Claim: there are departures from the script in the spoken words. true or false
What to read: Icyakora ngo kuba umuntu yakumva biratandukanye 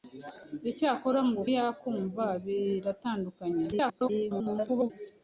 true